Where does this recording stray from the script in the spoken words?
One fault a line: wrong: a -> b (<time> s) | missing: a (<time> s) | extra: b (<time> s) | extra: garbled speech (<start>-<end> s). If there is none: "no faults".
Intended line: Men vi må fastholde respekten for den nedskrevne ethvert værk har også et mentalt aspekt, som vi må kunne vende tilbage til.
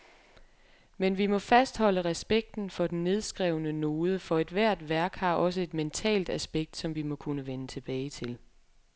extra: node for (3.7 s)